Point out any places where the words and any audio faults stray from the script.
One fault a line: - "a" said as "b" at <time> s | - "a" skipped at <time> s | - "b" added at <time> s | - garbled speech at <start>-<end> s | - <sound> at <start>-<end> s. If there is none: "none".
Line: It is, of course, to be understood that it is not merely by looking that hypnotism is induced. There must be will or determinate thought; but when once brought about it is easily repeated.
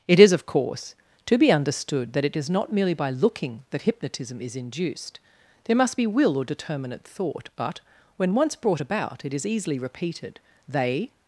- "They" added at 10.7 s